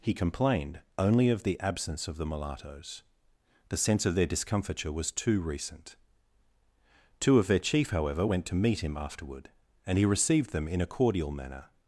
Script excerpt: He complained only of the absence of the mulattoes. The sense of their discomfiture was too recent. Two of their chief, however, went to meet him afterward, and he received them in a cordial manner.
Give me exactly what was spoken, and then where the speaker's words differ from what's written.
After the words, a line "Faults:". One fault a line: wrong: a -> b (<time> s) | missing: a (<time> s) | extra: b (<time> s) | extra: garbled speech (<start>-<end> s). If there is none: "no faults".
He complained only of the absence of the mulattoes. The sense of their discomfiture was too recent. Two of their chief, however, went to meet him afterward, and he received them in a cordial manner.
Faults:
no faults